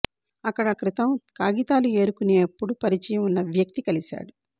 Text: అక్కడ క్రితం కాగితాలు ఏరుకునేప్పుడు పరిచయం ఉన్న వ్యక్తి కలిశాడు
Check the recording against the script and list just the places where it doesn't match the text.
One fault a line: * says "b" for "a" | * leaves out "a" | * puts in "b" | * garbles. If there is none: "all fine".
all fine